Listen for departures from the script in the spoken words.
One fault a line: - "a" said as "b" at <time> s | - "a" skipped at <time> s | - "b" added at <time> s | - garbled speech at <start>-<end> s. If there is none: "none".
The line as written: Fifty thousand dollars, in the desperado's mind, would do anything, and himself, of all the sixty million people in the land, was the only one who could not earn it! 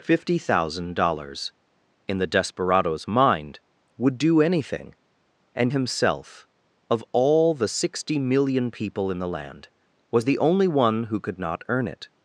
none